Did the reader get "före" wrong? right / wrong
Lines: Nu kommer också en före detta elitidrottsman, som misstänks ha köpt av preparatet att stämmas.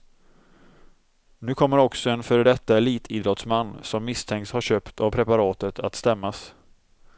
right